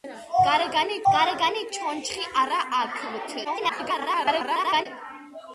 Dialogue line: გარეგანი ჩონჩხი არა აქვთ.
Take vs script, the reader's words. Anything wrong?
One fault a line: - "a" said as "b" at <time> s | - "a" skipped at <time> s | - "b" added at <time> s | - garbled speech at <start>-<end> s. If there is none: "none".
- "გარეგანი" added at 1.1 s
- garbled speech at 3.4-4.9 s